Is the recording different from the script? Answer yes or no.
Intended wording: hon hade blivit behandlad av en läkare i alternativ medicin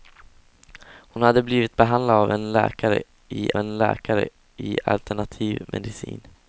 yes